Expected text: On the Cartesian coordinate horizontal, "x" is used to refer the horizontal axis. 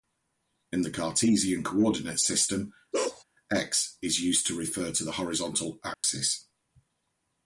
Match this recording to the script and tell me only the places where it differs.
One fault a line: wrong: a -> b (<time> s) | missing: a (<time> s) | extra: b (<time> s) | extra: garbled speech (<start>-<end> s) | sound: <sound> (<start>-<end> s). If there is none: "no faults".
wrong: On -> In (0.7 s)
wrong: horizontal -> system (2.2 s)
sound: bark (2.9-3.2 s)
extra: to (4.9 s)
sound: dropout (5.9-6.0 s)